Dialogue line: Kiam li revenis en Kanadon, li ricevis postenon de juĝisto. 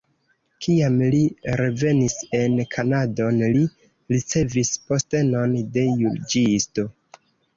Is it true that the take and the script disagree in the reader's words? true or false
false